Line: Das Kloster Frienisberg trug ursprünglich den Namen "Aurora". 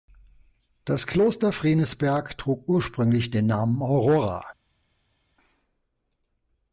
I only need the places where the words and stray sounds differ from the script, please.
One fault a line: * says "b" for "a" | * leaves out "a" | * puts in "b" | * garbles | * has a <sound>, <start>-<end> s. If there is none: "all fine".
all fine